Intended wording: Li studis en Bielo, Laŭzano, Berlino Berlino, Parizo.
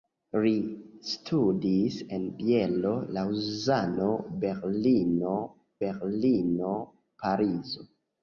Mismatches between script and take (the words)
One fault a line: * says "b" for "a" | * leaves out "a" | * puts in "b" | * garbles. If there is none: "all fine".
all fine